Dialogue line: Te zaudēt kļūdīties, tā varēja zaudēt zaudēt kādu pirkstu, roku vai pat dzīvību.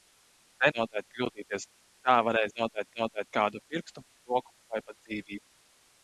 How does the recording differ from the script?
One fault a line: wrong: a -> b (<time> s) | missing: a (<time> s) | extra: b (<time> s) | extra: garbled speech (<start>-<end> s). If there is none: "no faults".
no faults